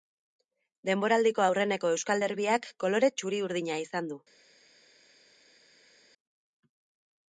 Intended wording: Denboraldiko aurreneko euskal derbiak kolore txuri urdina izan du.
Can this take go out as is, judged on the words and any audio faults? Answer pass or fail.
pass